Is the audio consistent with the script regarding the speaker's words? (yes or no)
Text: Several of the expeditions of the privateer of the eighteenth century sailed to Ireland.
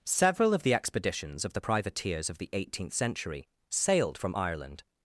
no